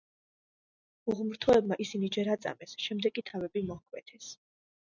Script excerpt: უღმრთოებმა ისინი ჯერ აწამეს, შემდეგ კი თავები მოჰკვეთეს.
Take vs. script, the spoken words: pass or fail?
pass